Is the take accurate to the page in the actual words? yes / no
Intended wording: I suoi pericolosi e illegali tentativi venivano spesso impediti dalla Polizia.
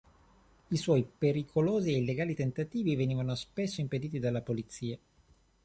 yes